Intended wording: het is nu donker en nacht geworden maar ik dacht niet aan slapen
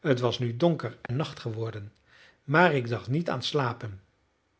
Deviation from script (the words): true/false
true